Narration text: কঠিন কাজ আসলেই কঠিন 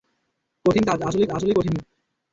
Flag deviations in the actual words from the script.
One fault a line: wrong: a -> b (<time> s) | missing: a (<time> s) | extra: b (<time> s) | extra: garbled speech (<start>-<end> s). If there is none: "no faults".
extra: আসলেই (1.3 s)